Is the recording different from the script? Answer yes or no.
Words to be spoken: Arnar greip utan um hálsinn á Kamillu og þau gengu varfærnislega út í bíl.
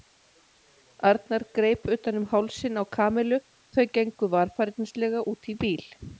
yes